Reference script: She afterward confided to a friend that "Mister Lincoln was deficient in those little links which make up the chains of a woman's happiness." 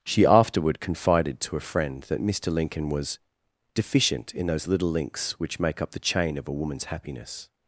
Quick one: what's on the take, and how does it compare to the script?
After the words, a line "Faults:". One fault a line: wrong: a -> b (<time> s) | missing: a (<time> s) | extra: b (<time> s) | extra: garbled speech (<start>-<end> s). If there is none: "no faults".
She afterward confided to a friend that "Mister Lincoln was deficient in those little links which make up the chain of a woman's happiness."
Faults:
wrong: chains -> chain (6.0 s)